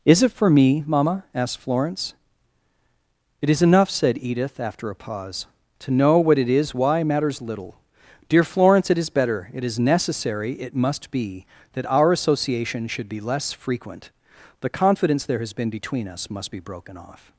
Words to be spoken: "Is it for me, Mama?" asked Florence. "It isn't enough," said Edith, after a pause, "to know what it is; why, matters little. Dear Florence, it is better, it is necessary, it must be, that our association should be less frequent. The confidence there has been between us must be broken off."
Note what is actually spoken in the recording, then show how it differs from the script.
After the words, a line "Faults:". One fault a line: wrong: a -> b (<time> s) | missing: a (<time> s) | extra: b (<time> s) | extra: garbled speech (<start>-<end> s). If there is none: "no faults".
"Is it for me, Mama?" asked Florence. "It is enough," said Edith, after a pause, "to know what it is; why, matters little. Dear Florence, it is better, it is necessary, it must be, that our association should be less frequent. The confidence there has been between us must be broken off."
Faults:
wrong: isn't -> is (3.5 s)